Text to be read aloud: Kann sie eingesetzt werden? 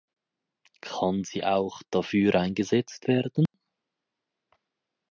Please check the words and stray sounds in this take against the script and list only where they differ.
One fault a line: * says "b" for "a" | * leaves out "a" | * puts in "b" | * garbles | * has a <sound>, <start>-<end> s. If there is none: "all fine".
* puts in "auch dafür"
* has a dropout, 3.5-3.5 s